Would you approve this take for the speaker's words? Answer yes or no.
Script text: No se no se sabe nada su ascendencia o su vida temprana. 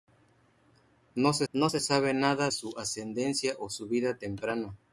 yes